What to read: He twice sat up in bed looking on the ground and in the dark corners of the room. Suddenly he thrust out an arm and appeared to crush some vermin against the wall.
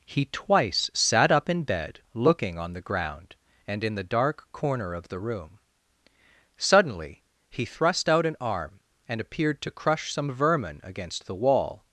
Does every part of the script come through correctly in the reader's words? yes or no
no